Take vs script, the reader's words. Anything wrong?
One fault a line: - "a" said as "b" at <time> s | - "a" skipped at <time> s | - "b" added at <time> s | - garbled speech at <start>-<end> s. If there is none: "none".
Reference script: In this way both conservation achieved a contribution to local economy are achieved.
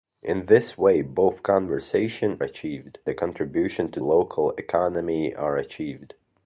none